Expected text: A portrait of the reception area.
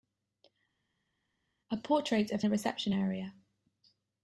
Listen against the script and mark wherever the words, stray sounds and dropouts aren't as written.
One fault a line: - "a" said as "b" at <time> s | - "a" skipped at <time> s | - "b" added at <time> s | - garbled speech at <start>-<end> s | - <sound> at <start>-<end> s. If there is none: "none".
none